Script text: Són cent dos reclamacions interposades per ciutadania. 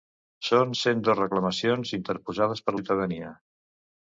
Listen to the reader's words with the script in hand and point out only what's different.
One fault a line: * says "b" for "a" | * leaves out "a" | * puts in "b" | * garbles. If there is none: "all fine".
all fine